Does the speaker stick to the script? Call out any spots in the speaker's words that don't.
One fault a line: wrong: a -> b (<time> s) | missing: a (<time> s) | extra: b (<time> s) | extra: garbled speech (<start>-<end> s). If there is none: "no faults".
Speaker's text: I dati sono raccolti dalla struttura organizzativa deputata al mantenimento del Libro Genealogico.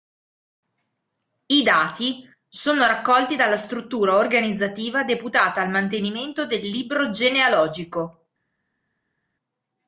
no faults